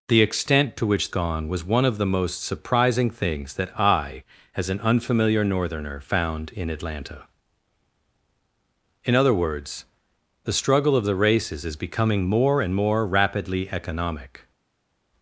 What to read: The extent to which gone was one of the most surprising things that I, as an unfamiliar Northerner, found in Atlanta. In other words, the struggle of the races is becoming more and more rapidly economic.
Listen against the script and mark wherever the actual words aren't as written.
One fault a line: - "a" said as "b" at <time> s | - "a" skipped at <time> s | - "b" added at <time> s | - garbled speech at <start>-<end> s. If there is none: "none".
none